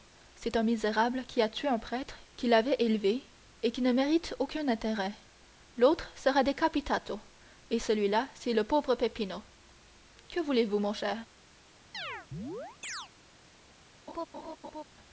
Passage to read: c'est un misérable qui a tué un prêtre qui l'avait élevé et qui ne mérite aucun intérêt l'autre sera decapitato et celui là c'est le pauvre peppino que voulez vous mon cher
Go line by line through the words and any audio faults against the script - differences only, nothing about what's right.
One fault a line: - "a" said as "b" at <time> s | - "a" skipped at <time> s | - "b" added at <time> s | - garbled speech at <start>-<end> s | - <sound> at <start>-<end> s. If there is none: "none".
- chirp at 11.9-13.1 s
- laugh at 14.1-14.8 s